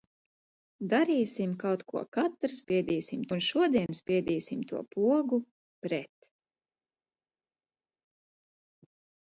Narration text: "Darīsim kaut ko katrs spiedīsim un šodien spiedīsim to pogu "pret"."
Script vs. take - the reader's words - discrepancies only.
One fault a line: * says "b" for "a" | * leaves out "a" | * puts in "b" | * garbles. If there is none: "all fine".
all fine